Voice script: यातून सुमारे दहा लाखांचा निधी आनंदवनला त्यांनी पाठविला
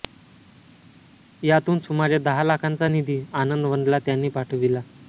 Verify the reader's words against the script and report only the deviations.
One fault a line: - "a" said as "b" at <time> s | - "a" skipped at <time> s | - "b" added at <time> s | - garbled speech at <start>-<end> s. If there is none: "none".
none